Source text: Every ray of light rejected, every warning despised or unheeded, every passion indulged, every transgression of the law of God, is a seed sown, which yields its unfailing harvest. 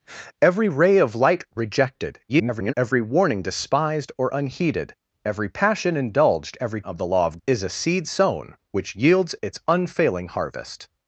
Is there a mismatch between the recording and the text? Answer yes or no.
yes